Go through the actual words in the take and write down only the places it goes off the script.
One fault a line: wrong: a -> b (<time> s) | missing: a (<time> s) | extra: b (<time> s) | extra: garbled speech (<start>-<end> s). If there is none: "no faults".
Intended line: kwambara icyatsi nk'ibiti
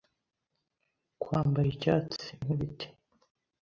no faults